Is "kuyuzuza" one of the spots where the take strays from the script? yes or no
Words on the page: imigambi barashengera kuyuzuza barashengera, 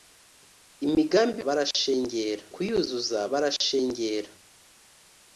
no